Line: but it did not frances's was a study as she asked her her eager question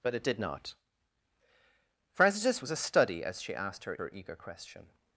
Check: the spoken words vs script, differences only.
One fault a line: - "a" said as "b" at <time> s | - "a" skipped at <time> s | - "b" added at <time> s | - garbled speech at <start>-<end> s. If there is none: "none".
none